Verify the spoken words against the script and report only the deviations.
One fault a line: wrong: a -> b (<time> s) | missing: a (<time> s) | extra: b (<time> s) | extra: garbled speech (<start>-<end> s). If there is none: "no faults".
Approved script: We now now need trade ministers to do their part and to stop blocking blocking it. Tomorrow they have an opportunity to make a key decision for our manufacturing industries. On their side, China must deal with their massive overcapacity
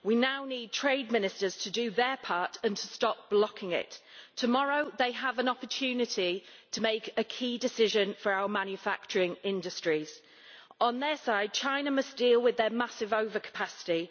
missing: now (0.5 s)
missing: blocking (3.7 s)